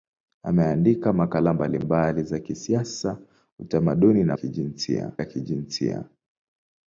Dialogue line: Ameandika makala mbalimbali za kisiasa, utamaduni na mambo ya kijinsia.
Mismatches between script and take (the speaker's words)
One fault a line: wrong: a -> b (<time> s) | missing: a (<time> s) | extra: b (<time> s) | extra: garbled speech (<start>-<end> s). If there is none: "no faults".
wrong: mambo -> kijinsia (4.3 s)